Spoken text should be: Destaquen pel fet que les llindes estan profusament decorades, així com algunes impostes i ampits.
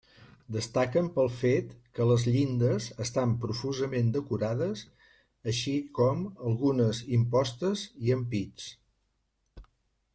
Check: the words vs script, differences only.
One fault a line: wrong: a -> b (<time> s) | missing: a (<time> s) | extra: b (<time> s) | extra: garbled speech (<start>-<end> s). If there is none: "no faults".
no faults